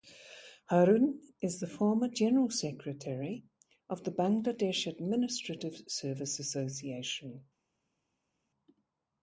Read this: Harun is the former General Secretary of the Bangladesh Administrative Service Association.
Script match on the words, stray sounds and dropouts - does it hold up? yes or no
yes